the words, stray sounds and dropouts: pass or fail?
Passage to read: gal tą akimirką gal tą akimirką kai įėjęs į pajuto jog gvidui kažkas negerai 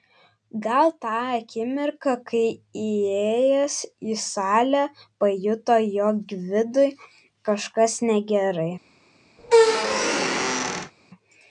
fail